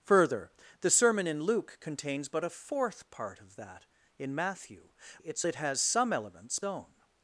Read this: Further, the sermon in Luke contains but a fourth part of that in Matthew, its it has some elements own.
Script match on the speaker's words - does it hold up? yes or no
yes